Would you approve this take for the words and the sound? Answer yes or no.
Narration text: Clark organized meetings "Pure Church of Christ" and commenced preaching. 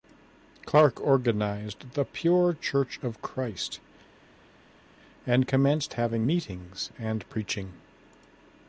no